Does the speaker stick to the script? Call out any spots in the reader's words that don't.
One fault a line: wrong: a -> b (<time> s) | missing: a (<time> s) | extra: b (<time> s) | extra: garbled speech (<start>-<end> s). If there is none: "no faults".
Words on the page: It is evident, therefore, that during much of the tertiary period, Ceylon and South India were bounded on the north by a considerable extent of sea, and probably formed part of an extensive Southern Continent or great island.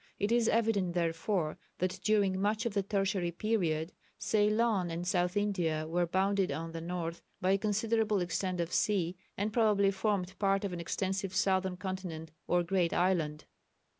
no faults